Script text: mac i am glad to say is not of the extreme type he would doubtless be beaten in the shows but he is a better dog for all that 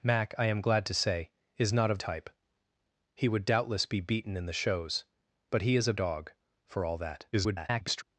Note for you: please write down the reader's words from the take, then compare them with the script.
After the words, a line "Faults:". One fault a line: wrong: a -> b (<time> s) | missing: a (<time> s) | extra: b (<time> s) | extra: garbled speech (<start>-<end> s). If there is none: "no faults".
mac i am glad to say is not of type he would doubtless be beaten in the shows but he is a dog for all that [garbled]
Faults:
missing: the extreme (2.0 s)
missing: better (5.9 s)
extra: garbled speech (7.3-8.0 s)